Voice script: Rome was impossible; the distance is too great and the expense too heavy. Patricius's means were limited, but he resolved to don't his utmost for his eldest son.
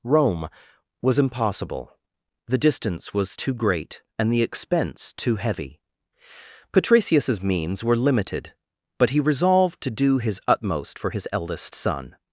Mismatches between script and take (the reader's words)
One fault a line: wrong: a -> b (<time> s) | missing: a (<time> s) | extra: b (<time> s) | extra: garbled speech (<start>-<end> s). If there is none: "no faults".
wrong: is -> was (3.1 s)
wrong: don't -> do (9.9 s)